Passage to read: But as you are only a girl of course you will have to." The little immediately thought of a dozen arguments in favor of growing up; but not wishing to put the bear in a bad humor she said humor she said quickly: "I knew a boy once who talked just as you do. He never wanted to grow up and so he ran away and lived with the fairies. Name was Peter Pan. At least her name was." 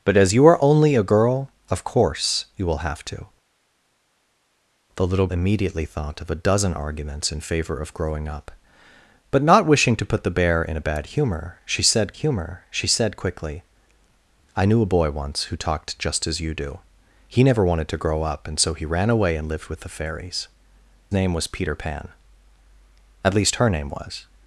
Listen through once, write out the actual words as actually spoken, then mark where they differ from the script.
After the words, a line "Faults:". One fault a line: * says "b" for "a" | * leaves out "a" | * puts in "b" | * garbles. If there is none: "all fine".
But as you are only a girl of course you will have to." The little immediately thought of a dozen arguments in favor of growing up; but not wishing to put the bear in a bad humor she said humor she said quickly: "I knew a boy once who talked just as you do. He never wanted to grow up and so he ran away and lived with the fairies. Name was Peter Pan. At least her name was."
Faults:
all fine